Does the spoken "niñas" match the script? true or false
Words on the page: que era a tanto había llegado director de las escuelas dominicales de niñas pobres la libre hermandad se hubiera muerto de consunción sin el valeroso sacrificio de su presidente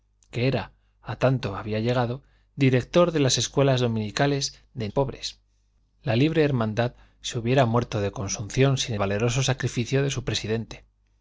false